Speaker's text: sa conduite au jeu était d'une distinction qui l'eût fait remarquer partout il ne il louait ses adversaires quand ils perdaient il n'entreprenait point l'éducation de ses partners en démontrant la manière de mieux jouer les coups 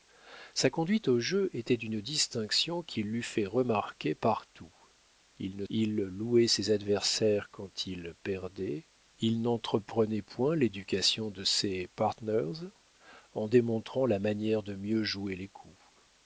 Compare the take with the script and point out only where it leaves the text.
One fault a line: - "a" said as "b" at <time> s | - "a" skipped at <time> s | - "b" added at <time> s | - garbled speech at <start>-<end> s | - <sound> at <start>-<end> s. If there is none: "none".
none